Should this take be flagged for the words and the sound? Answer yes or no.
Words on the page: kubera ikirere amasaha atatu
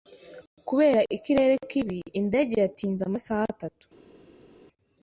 yes